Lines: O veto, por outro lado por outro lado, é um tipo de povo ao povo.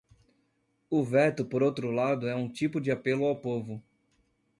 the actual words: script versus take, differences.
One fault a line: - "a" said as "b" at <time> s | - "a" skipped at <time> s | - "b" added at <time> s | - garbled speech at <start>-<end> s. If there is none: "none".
- "por outro lado" skipped at 2.3 s
- "povo" said as "apelo" at 2.9 s